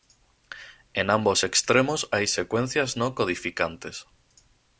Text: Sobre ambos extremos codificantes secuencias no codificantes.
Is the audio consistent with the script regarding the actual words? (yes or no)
no